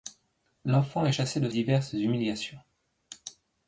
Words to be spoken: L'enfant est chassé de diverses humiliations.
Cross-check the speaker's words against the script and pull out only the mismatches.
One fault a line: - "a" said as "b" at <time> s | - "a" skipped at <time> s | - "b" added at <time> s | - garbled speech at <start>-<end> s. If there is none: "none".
none